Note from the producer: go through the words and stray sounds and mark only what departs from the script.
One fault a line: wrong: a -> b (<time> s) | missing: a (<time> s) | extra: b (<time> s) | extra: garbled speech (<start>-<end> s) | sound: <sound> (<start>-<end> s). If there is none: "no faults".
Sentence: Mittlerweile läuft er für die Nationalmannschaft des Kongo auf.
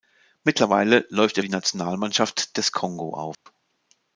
missing: für (1.4 s)
sound: dropout (3.3-3.5 s)